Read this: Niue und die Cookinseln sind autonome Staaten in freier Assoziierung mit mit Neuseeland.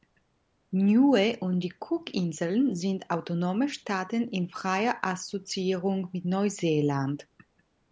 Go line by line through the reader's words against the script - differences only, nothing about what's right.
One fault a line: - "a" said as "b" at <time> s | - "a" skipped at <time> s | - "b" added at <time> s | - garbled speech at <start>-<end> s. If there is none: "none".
- "mit" skipped at 6.2 s